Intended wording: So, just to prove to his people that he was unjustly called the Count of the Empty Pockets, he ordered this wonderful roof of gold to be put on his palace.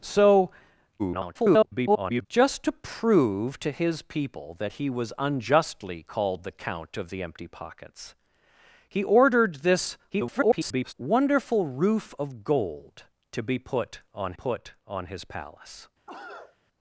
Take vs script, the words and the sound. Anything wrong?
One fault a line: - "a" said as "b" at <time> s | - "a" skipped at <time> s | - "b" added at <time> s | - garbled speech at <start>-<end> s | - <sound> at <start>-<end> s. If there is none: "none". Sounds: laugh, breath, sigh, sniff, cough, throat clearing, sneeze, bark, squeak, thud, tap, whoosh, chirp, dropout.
- garbled speech at 1.0-2.3 s
- garbled speech at 10.1-10.9 s
- "put on" added at 14.3 s
- cough at 16.1-16.6 s